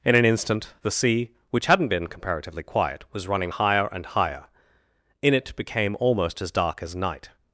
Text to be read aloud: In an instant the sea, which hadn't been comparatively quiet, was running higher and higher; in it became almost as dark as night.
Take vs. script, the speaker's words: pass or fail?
pass